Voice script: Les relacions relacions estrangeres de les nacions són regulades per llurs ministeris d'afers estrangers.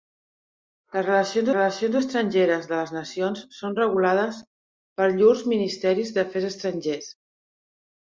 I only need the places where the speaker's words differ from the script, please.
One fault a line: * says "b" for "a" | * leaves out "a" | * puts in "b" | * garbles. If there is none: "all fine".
all fine